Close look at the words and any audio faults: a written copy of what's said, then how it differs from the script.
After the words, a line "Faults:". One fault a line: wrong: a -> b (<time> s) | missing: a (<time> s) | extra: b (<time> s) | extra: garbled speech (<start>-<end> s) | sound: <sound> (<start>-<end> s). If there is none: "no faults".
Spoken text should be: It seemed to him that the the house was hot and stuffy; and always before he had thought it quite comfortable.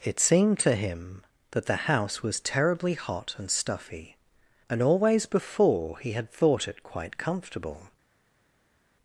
It seemed to him that the house was terribly hot and stuffy; and always before he had thought it quite comfortable.
Faults:
missing: the (1.9 s)
extra: terribly (2.4 s)